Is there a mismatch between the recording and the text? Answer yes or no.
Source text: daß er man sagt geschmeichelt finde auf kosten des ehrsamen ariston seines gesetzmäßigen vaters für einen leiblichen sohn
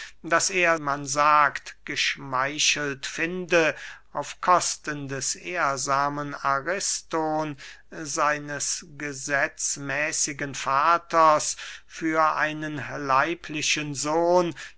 no